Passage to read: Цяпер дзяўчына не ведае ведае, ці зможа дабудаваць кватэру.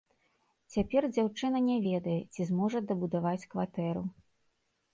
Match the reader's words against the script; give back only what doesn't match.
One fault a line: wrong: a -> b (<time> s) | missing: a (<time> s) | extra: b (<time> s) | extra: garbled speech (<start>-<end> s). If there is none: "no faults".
missing: ведае (2.2 s)